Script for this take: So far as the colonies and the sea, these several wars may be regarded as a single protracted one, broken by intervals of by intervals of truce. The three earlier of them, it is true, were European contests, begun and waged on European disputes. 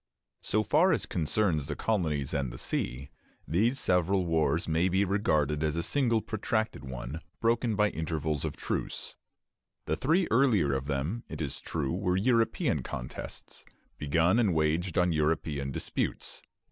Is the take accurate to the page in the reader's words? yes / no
no